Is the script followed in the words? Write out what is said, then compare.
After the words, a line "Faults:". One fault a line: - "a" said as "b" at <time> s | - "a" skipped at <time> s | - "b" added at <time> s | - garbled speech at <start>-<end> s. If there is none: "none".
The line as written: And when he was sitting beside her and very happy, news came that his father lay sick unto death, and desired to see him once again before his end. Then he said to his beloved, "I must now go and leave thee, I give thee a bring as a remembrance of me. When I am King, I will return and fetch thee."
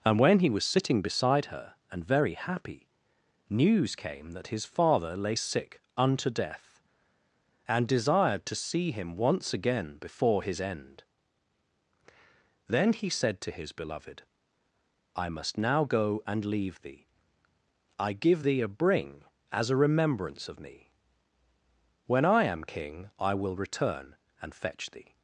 And when he was sitting beside her and very happy, news came that his father lay sick unto death, and desired to see him once again before his end. Then he said to his beloved, "I must now go and leave thee, I give thee a bring as a remembrance of me. When I am King, I will return and fetch thee."
Faults:
none